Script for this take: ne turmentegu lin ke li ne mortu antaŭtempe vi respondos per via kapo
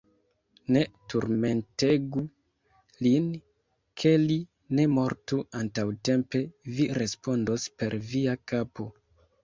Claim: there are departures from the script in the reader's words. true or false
false